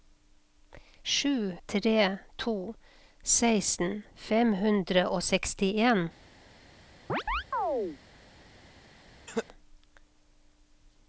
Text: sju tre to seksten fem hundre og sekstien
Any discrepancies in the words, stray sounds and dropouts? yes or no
yes